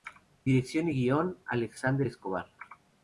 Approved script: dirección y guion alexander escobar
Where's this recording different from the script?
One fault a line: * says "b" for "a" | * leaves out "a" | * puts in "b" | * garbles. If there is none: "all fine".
all fine